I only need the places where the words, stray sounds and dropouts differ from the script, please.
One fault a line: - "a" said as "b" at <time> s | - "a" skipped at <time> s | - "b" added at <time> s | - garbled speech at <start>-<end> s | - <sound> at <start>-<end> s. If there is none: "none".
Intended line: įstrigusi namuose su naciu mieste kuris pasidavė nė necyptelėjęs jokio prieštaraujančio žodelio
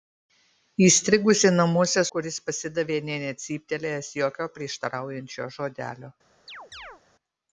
- "su naciu mieste" skipped at 2.0 s
- chirp at 6.5-7.0 s